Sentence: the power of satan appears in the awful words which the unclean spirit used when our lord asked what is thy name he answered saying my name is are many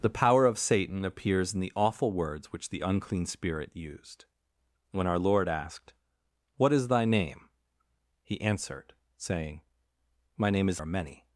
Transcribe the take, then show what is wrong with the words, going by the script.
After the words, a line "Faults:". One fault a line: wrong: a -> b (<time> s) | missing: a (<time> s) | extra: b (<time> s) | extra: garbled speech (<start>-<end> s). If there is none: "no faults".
the power of satan appears in the awful words which the unclean spirit used when our lord asked what is thy name he answered saying my name is are many
Faults:
no faults